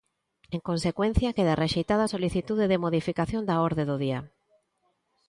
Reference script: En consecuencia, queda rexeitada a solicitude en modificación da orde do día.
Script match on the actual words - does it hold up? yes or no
no